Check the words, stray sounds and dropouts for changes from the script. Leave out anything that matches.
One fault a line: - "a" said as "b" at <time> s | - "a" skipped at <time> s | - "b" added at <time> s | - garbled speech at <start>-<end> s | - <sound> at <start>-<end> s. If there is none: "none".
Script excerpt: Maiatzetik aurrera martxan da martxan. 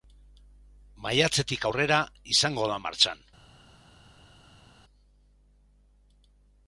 - "martxan" said as "izango" at 2.4 s